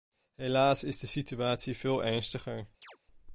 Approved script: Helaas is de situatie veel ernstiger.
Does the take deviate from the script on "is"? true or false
false